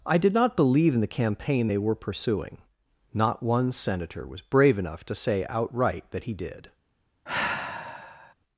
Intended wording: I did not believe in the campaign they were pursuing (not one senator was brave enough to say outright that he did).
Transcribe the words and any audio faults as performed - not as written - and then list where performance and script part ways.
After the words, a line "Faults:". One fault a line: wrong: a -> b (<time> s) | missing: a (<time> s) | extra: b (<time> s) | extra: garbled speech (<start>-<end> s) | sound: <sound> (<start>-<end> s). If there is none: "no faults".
I did not believe in the campaign they were pursuing (not one senator was brave enough to say outright that he did).
Faults:
sound: sigh (7.3-8.3 s)